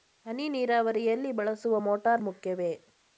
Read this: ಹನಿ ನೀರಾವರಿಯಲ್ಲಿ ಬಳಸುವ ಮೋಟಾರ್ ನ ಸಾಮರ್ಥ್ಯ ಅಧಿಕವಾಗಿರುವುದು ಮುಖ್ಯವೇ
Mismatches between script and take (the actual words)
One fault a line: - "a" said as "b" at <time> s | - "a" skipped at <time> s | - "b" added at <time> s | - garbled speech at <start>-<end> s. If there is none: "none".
- "ನ ಸಾಮರ್ಥ್ಯ ಅಧಿಕವಾಗಿರುವುದು" skipped at 2.2 s